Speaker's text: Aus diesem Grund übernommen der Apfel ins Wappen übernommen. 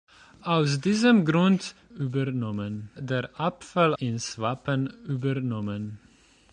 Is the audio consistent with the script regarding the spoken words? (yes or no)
yes